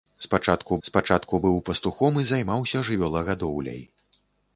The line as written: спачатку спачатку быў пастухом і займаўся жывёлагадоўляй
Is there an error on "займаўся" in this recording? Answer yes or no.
no